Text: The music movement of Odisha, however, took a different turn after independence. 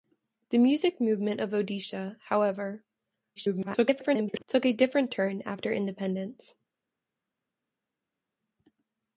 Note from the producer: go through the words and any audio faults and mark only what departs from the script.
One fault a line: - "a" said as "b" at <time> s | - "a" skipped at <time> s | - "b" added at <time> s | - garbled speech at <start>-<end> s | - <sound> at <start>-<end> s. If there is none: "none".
- garbled speech at 3.4-4.4 s